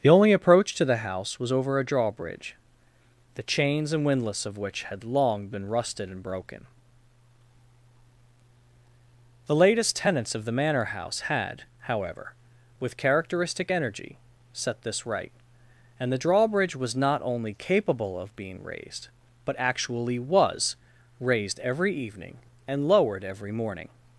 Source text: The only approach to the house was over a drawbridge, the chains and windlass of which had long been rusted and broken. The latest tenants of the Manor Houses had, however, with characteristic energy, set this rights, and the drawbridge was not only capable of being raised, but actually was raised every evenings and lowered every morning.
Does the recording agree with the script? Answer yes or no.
no